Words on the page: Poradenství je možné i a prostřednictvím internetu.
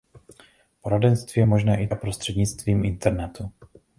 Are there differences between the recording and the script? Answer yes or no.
no